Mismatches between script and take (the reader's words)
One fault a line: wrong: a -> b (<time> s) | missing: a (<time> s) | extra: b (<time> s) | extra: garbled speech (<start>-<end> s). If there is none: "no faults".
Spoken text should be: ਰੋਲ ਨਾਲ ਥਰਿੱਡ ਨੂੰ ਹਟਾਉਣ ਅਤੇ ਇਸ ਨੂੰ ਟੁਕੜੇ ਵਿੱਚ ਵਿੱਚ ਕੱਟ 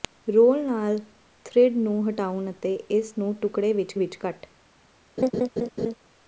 no faults